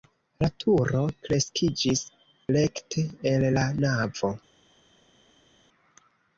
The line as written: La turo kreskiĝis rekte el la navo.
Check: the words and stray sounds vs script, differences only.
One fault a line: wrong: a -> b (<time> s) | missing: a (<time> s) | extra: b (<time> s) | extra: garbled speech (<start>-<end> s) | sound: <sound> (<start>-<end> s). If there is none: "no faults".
no faults